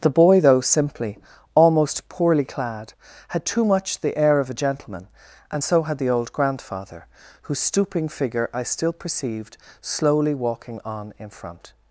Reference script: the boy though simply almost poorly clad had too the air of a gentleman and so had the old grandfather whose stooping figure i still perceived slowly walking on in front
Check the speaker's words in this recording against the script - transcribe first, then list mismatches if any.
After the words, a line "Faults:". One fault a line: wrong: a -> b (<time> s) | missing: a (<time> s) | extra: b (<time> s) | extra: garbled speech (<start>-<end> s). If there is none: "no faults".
the boy though simply almost poorly clad had too much the air of a gentleman and so had the old grandfather whose stooping figure i still perceived slowly walking on in front
Faults:
extra: much (3.7 s)